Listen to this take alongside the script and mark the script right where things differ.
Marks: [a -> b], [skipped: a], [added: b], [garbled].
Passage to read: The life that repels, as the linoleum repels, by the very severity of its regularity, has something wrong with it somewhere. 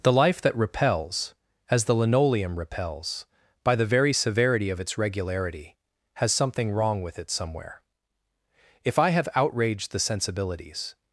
The life that repels, as the linoleum repels, by the very severity of its regularity, has something wrong with it somewhere. [added: If I have outraged the sensibilities]